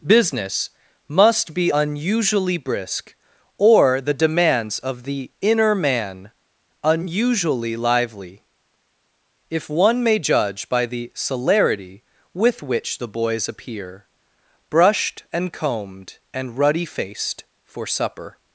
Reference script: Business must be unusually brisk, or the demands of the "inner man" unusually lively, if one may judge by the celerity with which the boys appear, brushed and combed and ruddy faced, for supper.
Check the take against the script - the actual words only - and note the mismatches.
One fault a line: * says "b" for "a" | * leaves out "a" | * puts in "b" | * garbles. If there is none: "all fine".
all fine